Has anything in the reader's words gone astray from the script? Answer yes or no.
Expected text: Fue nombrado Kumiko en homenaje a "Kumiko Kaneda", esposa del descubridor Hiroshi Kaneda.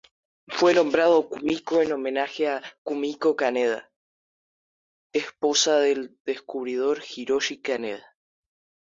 no